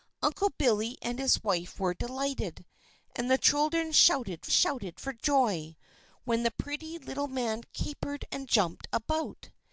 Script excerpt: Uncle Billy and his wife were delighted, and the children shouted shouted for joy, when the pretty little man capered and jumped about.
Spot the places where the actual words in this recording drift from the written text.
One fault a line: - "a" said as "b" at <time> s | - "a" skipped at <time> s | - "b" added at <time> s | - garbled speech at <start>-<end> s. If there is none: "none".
none